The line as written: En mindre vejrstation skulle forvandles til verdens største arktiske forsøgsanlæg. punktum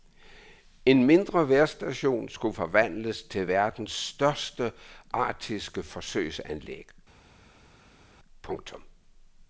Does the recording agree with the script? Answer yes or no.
yes